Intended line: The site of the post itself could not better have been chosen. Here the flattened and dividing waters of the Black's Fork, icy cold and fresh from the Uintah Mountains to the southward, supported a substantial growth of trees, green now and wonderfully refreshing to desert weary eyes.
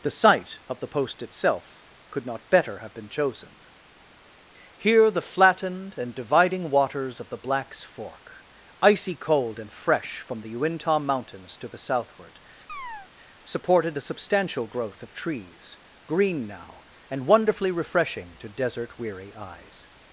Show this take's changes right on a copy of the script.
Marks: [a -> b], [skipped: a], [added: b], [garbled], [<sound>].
The site of the post itself could not better have been chosen. Here the flattened and dividing waters of the Black's Fork, icy cold and fresh from the Uintah Mountains to the southward, [chirp] supported a substantial growth of trees, green now and wonderfully refreshing to desert weary eyes.